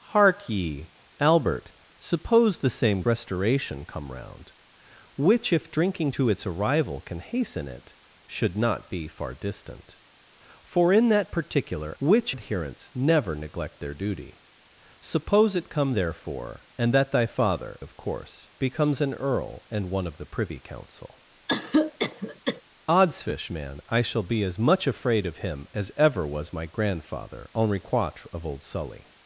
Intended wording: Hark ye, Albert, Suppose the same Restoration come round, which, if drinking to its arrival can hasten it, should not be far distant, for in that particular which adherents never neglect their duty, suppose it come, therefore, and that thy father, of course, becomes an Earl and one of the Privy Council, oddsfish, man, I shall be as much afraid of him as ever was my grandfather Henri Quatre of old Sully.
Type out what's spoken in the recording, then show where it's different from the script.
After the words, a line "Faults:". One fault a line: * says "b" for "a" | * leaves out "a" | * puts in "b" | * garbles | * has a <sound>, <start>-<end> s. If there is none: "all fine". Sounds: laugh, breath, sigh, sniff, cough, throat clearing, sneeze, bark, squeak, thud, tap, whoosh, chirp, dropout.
Hark ye, Albert, Suppose the same Restoration come round, which, if drinking to its arrival can hasten it, should not be far distant, for in that particular which adherents never neglect their duty, suppose it come, therefore, and that thy father, of course, becomes an Earl and one of the Privy Council, oddsfish, man, I shall be as much afraid of him as ever was my grandfather Henri Quatre of old Sully.
Faults:
* has a cough, 21.5-22.6 s